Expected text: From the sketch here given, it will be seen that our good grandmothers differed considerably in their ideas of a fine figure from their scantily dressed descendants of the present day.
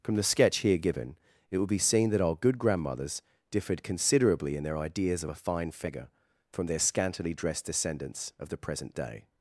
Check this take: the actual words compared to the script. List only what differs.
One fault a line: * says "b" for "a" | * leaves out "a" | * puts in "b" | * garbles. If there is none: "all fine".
all fine